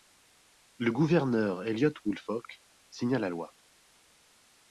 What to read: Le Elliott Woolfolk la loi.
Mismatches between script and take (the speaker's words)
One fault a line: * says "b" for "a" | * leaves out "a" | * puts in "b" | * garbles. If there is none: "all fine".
* puts in "Gouverneur"
* puts in "signa"